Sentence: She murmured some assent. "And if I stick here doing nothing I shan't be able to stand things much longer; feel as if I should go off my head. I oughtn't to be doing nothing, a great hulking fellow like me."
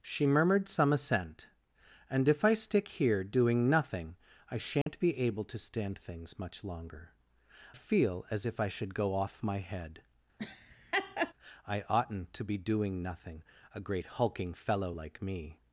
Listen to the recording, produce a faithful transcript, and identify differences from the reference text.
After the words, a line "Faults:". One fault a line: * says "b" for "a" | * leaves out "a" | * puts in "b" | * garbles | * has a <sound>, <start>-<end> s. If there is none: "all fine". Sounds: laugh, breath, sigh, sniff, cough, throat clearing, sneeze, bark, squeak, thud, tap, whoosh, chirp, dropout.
She murmured some assent. "And if I stick here doing nothing I shan't be able to stand things much longer; feel as if I should go off my head. I oughtn't to be doing nothing, a great hulking fellow like me."
Faults:
* has a dropout, 4.8-4.9 s
* has a laugh, 10.4-11.3 s